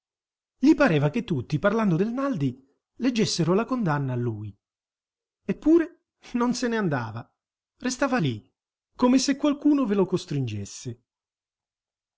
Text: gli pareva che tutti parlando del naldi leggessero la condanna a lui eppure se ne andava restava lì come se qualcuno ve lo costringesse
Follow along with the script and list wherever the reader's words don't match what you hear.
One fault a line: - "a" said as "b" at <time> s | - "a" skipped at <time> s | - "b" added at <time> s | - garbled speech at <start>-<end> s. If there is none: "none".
- "non" added at 6.3 s